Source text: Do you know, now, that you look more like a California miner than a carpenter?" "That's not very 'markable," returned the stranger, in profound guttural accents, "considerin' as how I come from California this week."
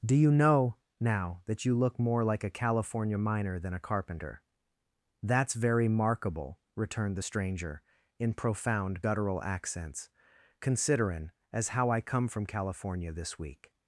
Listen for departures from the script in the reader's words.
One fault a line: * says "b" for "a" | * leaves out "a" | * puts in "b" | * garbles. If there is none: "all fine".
* leaves out "not"